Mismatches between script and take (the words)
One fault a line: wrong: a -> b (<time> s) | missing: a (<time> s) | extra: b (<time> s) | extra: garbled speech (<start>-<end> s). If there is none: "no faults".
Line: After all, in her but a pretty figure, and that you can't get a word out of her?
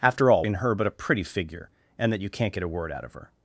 no faults